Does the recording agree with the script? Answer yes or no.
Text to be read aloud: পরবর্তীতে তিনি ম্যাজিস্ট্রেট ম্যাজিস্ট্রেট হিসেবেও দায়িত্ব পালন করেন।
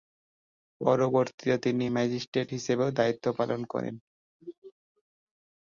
no